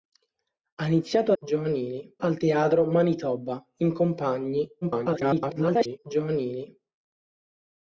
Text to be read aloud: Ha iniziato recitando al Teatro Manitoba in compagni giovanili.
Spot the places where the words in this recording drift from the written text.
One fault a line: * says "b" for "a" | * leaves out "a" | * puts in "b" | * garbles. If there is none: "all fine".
* says "giovanili" for "recitando"
* garbles